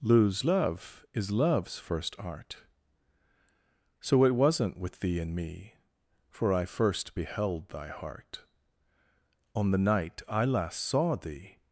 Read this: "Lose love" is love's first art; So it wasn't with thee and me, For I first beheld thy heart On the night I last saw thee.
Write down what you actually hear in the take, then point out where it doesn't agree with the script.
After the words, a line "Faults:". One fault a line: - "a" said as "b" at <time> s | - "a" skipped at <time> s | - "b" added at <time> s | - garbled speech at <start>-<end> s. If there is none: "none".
"Lose love" is love's first art; So it wasn't with thee and me, For I first beheld thy heart On the night I last saw thee.
Faults:
none